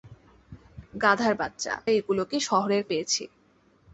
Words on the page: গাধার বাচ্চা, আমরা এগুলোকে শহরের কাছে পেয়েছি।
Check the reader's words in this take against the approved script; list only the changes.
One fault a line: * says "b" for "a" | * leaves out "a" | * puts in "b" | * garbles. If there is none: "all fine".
* leaves out "আমরা"
* leaves out "কাছে"